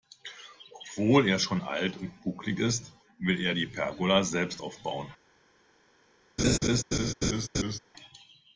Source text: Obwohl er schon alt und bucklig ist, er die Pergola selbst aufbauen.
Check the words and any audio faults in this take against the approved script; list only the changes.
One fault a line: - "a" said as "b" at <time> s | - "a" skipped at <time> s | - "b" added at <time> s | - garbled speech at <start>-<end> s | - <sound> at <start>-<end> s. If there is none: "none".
- "will" added at 3.2 s
- laugh at 6.4-7.8 s